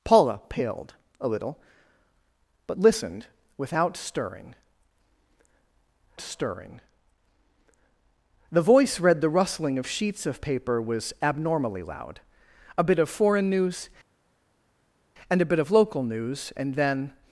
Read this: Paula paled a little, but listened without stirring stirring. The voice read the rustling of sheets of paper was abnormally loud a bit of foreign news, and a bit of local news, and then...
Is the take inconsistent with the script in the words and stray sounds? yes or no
no